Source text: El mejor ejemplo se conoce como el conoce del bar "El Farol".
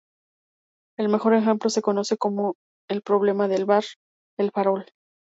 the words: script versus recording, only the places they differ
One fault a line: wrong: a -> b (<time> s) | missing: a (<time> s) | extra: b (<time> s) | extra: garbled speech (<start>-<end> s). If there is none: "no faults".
wrong: conoce -> problema (3.0 s)